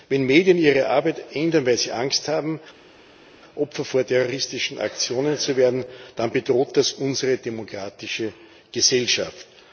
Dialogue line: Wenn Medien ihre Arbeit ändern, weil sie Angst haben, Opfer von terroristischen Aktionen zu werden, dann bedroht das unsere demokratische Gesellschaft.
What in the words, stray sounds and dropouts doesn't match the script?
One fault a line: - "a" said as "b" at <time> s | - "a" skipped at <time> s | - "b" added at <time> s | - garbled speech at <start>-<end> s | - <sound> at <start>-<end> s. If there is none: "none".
none